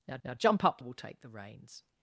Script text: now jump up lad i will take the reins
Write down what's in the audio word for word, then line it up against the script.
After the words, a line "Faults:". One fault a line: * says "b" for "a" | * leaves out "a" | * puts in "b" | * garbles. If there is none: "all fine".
now now jump up will take the reins
Faults:
* puts in "now"
* leaves out "lad i"